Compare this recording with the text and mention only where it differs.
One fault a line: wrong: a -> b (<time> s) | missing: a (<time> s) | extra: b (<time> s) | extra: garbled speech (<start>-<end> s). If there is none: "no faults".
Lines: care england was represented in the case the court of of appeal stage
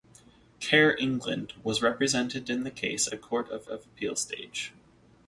no faults